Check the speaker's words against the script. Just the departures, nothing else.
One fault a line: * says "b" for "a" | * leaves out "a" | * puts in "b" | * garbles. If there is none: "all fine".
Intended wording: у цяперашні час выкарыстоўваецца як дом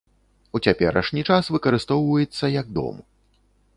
all fine